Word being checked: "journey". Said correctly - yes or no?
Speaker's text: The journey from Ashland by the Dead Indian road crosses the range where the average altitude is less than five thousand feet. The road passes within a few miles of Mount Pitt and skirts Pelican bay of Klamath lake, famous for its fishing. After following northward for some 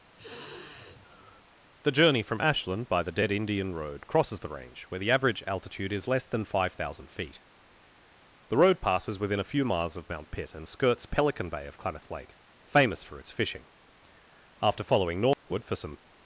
yes